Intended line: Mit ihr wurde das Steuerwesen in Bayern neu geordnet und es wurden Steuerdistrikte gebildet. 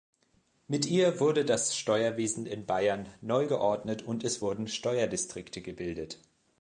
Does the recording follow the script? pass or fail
pass